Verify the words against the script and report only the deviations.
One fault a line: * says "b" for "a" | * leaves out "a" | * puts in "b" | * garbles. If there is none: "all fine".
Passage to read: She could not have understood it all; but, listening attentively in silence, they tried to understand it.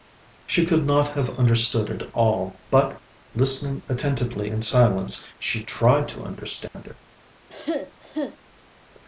* says "she" for "they"